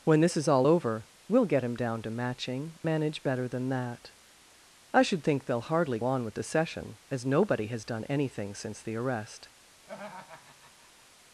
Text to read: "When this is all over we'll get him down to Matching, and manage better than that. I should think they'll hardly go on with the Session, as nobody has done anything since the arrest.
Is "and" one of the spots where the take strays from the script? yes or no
yes